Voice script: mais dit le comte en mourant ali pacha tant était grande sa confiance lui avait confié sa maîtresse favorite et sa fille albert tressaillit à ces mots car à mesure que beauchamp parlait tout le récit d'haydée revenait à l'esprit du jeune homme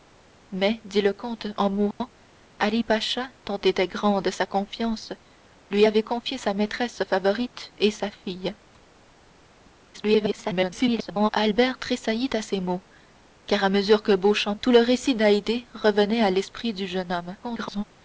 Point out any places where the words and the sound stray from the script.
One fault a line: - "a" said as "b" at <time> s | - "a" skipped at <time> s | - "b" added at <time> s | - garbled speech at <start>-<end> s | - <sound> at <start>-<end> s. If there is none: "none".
- dropout at 1.9-2.0 s
- garbled speech at 9.9-11.3 s
- "parlait" skipped at 14.5 s
- garbled speech at 17.4-17.8 s